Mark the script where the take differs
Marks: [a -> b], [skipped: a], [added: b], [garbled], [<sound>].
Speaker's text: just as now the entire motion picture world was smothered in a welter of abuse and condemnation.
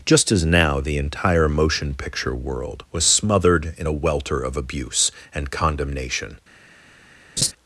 just as now the entire motion picture world was smothered in a welter of abuse and condemnation. [laugh]